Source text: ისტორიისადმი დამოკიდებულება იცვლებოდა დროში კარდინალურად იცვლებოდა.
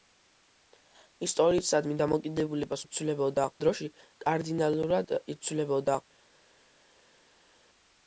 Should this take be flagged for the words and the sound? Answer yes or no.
no